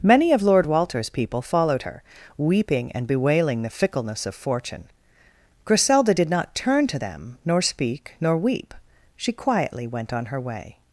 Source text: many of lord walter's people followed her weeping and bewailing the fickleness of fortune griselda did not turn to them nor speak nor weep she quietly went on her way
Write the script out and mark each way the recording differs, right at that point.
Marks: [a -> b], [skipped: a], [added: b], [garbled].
many of lord walter's people followed her weeping and bewailing the fickleness of fortune griselda did not turn to them nor speak nor weep she quietly went on her way